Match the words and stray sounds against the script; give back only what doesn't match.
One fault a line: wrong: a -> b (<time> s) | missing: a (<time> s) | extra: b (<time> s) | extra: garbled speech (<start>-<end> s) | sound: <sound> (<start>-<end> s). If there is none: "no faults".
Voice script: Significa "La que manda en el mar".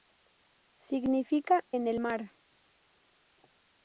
missing: La que manda (1.6 s)